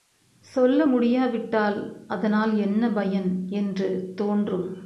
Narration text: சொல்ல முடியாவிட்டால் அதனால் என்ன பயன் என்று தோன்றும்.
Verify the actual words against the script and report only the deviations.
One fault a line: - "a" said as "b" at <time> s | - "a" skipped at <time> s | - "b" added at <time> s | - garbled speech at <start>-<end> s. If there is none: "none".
none